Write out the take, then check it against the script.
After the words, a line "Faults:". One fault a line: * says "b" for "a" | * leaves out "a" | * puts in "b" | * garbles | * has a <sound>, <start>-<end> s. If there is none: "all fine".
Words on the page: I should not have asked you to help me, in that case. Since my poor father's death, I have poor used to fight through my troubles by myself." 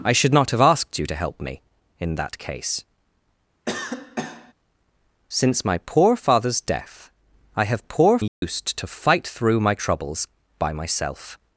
I should not have asked you to help me, in that case. Since my poor father's death, I have poor used to fight through my troubles by myself."
Faults:
* has a cough, 3.7-4.5 s
* has a dropout, 8.3-8.4 s